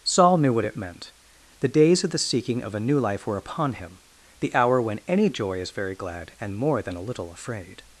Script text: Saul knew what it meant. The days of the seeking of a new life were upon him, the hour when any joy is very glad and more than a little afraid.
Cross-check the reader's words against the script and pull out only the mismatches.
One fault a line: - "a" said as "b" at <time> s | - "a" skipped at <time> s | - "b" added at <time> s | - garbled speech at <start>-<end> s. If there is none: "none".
none